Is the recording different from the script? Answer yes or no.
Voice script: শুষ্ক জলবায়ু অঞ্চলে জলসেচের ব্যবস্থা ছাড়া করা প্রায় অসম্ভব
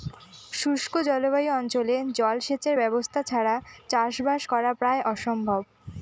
yes